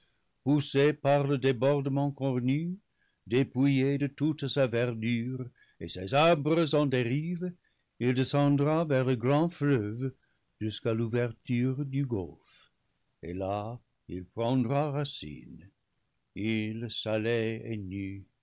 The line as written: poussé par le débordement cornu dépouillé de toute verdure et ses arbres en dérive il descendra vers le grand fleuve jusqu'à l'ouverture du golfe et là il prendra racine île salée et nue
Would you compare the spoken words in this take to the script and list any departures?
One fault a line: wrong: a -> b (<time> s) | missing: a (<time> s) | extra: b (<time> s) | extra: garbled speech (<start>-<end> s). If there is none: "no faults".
extra: sa (4.5 s)